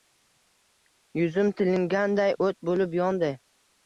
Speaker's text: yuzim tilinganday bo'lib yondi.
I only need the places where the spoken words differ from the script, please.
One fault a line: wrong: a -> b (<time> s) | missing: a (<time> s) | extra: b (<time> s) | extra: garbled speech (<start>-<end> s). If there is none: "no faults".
extra: o't (2.4 s)